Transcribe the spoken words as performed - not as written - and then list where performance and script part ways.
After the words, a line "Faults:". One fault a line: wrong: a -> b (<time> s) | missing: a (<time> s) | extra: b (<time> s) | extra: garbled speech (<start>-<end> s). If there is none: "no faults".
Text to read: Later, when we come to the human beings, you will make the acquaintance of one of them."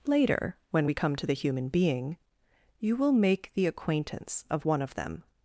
Later, when we come to the human being, you will make the acquaintance of one of them."
Faults:
wrong: beings -> being (1.7 s)